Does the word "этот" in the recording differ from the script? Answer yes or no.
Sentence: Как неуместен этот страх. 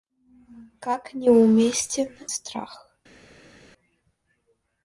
yes